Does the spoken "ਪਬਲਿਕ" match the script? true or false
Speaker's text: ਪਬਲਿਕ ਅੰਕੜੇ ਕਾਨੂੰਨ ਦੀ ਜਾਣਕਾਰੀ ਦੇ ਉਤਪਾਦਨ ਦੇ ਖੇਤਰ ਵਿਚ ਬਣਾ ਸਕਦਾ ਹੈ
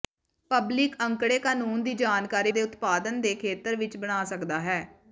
true